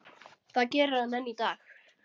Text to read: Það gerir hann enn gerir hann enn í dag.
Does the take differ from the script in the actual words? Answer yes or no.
yes